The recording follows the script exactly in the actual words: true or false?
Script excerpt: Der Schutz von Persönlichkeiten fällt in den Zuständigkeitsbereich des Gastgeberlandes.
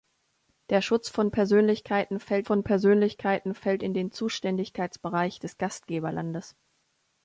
false